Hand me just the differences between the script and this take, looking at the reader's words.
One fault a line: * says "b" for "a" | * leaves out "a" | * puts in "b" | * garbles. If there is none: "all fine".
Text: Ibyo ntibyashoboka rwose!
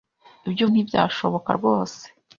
all fine